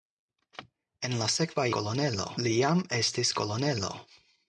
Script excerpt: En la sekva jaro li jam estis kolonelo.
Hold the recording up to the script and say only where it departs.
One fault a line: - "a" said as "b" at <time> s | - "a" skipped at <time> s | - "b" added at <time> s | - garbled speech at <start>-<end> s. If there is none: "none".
- "jaro" said as "kolonelo" at 1.8 s